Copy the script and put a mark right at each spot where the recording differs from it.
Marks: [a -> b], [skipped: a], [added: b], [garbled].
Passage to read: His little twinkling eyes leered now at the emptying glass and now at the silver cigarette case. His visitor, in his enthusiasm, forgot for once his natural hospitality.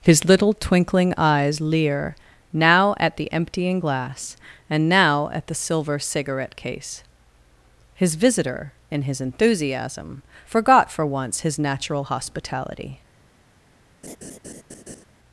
His little twinkling eyes [leered -> leer] now at the emptying glass and now at the silver cigarette case. His visitor, in his enthusiasm, forgot for once his natural hospitality.